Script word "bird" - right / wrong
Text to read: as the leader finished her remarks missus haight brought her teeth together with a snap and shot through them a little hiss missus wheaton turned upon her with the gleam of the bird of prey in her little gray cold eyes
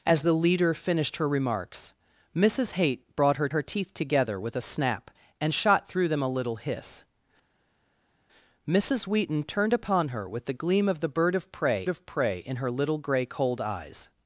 right